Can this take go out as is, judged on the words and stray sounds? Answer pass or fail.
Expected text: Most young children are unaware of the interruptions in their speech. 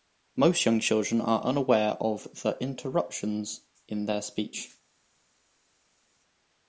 pass